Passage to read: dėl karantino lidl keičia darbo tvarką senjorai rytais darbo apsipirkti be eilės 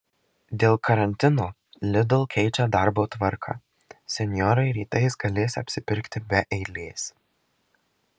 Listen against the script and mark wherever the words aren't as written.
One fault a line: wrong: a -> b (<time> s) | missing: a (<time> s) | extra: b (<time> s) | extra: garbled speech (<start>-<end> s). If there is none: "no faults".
wrong: darbo -> galės (5.2 s)